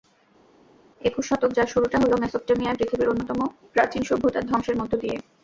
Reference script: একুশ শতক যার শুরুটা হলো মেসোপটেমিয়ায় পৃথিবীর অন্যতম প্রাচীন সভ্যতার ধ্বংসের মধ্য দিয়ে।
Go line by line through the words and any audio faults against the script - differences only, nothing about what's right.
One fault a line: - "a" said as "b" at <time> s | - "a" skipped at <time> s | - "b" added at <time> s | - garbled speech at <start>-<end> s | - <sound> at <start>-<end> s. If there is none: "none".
none